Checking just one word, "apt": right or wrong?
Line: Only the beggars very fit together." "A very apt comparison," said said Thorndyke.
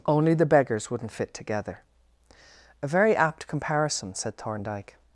right